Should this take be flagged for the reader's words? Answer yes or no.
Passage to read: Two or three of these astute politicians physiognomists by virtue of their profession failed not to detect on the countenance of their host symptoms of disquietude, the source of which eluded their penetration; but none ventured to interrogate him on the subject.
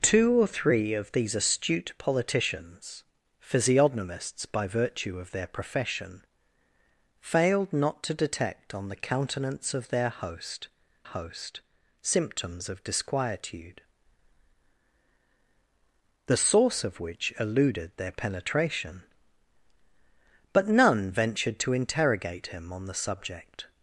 yes